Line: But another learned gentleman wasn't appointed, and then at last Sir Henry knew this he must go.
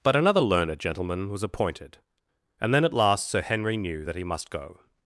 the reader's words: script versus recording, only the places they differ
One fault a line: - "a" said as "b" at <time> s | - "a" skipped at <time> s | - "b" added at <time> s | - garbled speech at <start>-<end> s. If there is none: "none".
- "wasn't" said as "was" at 1.3 s
- "this" said as "that" at 4.0 s